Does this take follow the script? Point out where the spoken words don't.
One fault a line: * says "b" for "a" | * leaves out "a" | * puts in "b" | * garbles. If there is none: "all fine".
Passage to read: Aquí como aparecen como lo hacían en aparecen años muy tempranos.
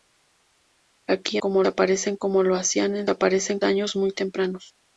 all fine